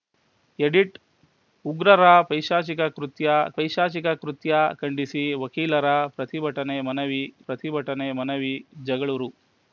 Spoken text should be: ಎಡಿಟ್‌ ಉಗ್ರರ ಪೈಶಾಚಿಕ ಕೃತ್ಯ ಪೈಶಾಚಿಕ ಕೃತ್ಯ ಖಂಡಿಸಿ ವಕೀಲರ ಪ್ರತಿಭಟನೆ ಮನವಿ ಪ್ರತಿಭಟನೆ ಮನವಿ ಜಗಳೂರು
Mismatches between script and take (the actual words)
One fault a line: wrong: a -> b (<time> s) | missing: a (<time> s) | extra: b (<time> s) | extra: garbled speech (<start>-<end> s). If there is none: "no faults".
no faults